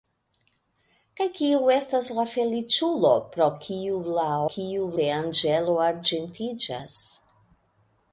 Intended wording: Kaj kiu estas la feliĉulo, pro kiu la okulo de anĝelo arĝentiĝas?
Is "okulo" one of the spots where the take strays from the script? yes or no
yes